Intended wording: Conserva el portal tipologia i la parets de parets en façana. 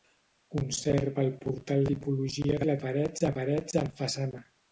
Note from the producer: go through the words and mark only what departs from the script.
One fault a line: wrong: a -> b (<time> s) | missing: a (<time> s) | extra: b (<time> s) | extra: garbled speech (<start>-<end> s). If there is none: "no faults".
no faults